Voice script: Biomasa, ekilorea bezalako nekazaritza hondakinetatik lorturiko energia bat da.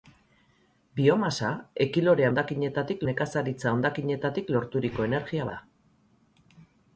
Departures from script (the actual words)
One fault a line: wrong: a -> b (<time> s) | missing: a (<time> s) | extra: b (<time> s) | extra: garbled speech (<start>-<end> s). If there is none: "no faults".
wrong: bezalako -> hondakinetatik (2.3 s)
missing: bat (5.5 s)